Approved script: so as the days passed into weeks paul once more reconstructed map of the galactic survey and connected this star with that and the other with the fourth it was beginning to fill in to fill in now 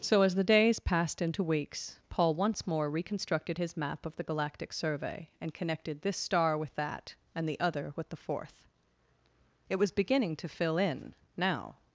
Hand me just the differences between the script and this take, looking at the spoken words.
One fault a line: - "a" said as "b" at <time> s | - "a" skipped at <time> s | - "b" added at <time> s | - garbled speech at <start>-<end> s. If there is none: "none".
- "his" added at 3.6 s
- "to fill in" skipped at 11.1 s